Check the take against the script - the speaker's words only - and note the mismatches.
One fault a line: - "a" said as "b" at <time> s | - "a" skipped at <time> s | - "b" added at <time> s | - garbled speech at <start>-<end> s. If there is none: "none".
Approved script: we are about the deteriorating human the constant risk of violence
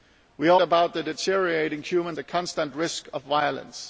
none